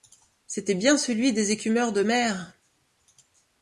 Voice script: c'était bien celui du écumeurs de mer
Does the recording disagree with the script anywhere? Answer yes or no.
yes